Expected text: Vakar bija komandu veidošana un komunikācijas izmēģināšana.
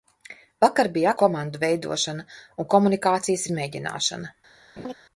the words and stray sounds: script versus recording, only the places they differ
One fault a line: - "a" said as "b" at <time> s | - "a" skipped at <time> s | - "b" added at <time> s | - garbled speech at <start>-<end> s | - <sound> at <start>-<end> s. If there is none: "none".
- laugh at 4.8-4.9 s